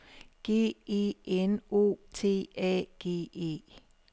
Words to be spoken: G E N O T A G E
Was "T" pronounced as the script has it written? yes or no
yes